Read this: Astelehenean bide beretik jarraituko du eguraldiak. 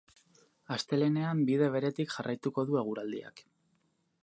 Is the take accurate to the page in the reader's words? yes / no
yes